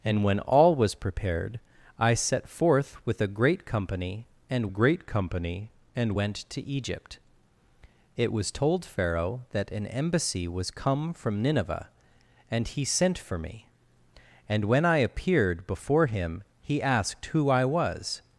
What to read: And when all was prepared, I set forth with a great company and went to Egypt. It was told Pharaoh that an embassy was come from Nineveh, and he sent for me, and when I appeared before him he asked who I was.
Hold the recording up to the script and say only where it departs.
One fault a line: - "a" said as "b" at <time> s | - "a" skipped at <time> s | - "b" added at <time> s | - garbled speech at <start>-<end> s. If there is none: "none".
- "great company and" added at 4.7 s